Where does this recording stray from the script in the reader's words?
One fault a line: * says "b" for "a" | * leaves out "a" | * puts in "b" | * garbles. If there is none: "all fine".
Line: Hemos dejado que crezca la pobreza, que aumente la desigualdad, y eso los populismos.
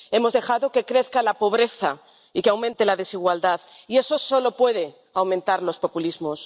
* puts in "y"
* puts in "solo puede aumentar"